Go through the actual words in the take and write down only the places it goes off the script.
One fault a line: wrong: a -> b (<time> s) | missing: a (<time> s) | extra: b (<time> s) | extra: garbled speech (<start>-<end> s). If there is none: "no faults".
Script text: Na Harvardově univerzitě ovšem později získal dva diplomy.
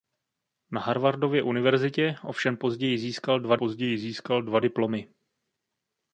extra: později získal dva (3.5 s)